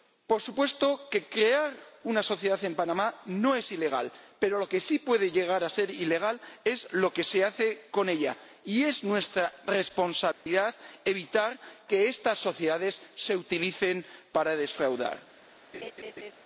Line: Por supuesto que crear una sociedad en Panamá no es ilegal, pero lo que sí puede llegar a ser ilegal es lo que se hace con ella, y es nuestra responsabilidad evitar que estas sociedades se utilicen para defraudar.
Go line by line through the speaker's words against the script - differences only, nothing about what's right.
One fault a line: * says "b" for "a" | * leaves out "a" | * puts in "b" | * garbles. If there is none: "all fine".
all fine